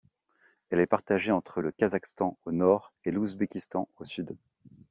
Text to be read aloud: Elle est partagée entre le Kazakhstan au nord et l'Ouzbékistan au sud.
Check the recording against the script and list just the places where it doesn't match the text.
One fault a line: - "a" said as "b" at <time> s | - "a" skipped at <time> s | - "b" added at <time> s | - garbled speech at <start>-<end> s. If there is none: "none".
none